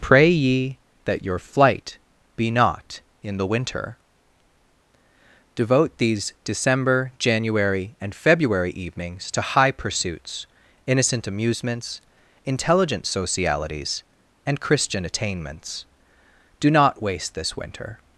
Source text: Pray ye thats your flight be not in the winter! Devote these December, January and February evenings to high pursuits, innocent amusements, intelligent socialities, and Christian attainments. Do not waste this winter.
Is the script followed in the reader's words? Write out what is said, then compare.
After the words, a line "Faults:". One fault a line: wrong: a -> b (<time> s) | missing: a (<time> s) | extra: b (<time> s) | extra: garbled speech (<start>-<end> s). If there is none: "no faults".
Pray ye that your flight be not in the winter! Devote these December, January and February evenings to high pursuits, innocent amusements, intelligent socialities, and Christian attainments. Do not waste this winter.
Faults:
wrong: thats -> that (1.1 s)